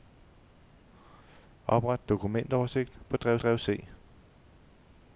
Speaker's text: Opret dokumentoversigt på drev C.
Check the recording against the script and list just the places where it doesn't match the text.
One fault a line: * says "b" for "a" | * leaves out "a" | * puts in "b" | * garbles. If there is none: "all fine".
* puts in "drev"